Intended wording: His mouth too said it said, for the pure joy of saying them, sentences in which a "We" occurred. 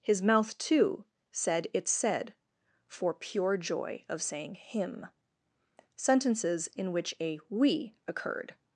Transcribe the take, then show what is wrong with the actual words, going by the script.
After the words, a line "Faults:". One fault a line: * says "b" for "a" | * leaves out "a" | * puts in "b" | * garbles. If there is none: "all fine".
His mouth too said it said, for pure joy of saying him, sentences in which a "We" occurred.
Faults:
* leaves out "the"
* says "him" for "them"